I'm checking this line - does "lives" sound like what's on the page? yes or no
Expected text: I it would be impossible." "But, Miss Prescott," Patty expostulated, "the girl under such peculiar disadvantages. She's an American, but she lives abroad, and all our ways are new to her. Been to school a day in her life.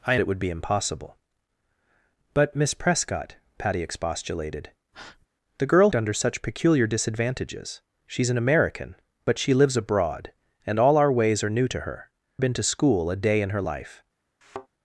yes